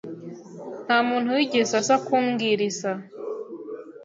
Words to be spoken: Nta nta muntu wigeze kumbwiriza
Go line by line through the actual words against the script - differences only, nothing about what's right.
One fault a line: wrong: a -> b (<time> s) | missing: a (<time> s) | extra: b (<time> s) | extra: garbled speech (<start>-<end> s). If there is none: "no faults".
missing: nta (1.0 s)
extra: aza (1.8 s)